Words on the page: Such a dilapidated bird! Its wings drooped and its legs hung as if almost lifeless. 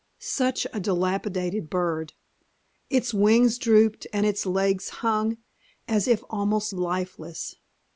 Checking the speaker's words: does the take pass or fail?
pass